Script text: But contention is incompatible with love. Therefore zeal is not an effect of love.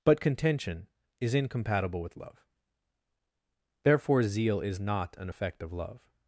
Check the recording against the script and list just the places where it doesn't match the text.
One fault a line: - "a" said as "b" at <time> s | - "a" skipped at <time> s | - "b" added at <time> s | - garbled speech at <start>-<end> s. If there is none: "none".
none